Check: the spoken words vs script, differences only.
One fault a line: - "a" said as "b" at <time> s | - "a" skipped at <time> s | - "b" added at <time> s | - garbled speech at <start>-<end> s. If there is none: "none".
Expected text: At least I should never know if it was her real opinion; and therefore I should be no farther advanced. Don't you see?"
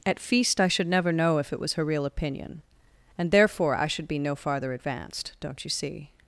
- "least" said as "feast" at 0.2 s